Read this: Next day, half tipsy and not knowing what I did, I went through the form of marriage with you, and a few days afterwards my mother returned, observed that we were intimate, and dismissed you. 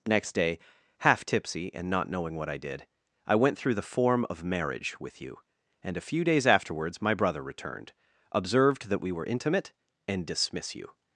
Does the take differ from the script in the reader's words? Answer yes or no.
yes